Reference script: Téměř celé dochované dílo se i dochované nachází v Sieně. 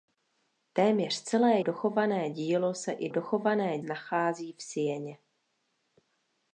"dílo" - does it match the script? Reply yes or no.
yes